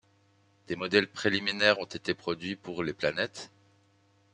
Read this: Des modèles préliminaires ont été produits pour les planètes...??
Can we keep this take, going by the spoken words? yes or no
yes